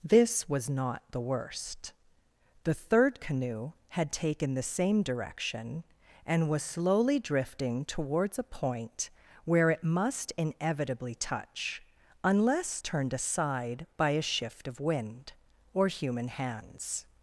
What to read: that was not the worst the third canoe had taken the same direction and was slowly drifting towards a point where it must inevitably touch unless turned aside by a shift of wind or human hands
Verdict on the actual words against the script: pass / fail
fail